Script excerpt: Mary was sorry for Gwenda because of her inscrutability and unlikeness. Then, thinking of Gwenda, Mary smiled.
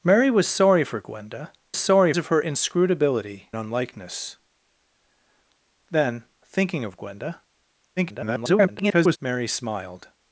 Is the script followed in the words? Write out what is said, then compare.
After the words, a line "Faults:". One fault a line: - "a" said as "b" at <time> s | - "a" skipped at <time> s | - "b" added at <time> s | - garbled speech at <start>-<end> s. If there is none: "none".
Mary was sorry for Gwenda sorry of her inscrutability unlikeness. Then, thinking of Gwenda, [garbled] Mary smiled.
Faults:
- "because" said as "sorry" at 1.8 s
- "and" skipped at 3.5 s
- garbled speech at 8.0-9.2 s